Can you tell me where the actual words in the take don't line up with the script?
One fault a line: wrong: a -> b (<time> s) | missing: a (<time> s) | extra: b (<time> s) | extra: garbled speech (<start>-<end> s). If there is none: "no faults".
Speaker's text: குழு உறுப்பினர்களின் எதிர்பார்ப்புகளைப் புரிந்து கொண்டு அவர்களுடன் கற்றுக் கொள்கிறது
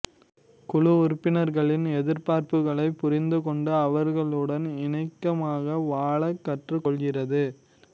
extra: இணக்கமாக வாழக் (4.8 s)